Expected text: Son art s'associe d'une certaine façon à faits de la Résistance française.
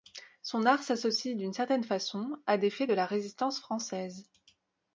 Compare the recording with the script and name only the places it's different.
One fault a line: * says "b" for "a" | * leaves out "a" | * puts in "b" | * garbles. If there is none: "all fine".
* puts in "des"